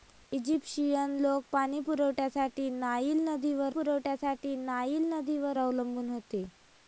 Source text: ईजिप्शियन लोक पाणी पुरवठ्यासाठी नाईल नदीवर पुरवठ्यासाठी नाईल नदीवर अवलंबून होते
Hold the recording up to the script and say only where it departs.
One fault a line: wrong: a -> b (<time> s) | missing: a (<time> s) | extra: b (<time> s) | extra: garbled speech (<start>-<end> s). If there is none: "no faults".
no faults